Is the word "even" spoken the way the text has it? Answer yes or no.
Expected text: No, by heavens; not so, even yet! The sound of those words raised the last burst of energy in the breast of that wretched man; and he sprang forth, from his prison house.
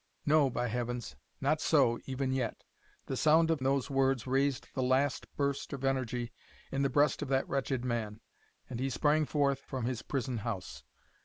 yes